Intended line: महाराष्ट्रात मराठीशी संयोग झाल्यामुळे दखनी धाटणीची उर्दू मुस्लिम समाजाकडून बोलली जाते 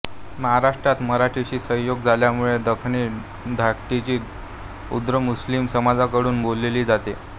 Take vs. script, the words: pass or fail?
pass